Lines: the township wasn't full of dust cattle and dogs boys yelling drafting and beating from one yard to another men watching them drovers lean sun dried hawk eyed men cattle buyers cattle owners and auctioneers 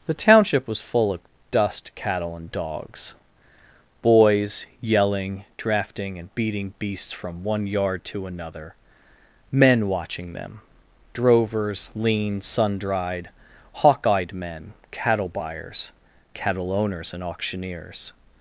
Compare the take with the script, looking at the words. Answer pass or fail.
fail